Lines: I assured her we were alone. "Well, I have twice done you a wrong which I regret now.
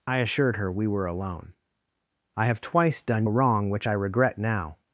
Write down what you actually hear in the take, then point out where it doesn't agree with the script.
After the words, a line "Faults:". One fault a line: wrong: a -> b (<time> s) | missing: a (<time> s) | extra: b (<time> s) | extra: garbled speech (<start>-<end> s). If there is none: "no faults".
I assured her we were alone. "I have twice done a wrong which I regret now.
Faults:
missing: Well (1.5 s)
missing: you (3.3 s)